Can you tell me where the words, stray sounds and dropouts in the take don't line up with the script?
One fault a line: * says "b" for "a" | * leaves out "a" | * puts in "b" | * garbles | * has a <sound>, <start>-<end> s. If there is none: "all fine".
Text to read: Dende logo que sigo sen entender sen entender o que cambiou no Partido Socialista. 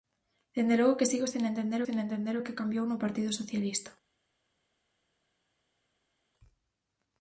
all fine